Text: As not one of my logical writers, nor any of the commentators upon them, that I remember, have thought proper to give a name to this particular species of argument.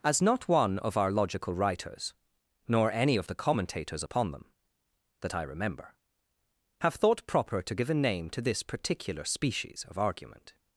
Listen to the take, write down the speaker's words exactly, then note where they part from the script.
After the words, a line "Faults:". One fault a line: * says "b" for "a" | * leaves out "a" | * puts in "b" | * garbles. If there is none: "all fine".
As not one of our logical writers, nor any of the commentators upon them, that I remember, have thought proper to give a name to this particular species of argument.
Faults:
* says "our" for "my"